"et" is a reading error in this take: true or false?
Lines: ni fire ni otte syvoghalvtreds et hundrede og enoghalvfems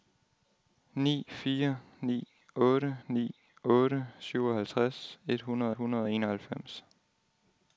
false